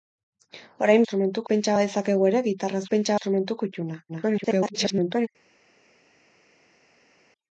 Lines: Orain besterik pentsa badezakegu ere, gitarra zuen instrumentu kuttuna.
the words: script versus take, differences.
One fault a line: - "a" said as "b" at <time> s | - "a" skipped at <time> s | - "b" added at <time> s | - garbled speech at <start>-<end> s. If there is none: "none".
- "besterik" said as "instrumentu" at 1.0 s
- "zuen" said as "pentsa" at 2.9 s
- garbled speech at 4.1-5.3 s